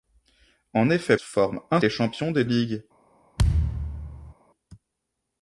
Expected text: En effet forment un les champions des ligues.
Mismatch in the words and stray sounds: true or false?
true